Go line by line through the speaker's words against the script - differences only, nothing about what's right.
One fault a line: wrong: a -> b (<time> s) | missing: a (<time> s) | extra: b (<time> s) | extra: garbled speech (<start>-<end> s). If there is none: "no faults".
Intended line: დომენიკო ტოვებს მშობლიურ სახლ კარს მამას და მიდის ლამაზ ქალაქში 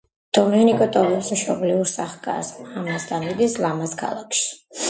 no faults